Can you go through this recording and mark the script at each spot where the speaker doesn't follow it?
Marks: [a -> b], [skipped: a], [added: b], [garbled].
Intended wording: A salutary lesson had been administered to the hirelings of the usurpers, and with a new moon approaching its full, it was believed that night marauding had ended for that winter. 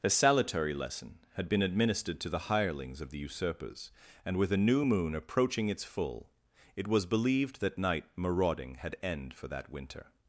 A salutary lesson had been administered to the hirelings of the usurpers, and with a new moon approaching its full, it was believed that night marauding had [ended -> end] for that winter.